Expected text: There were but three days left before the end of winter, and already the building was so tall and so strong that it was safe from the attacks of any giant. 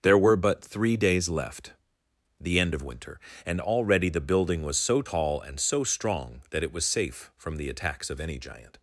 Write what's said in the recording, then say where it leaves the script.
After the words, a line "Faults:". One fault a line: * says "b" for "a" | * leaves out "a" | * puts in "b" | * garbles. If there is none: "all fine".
There were but three days left the end of winter, and already the building was so tall and so strong that it was safe from the attacks of any giant.
Faults:
* leaves out "before"